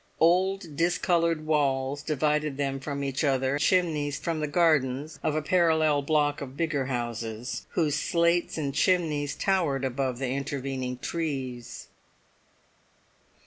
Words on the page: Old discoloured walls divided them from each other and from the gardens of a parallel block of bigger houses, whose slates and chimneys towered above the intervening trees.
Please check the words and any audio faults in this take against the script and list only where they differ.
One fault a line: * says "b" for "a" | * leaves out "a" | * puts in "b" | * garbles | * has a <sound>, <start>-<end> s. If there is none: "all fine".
* says "chimneys" for "and"